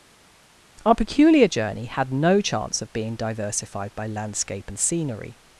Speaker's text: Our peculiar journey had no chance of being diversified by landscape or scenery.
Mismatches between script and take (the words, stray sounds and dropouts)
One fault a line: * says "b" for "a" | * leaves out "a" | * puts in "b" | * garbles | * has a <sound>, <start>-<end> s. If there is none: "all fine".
* says "and" for "or"